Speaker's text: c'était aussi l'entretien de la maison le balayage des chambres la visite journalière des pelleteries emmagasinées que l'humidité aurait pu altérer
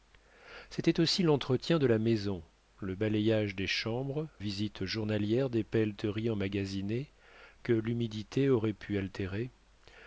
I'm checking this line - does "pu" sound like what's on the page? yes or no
yes